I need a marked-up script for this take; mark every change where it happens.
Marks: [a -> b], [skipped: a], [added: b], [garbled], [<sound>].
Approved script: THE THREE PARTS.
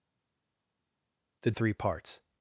THE THREE PARTS.